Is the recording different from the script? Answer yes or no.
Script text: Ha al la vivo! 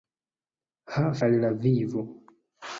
no